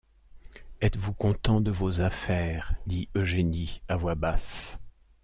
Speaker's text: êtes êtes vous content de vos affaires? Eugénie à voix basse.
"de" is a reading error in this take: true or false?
false